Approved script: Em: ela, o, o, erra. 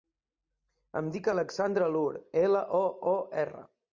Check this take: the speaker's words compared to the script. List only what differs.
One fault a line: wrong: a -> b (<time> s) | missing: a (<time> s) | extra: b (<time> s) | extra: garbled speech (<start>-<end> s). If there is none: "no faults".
extra: dic Alexandra Loor (1.1 s)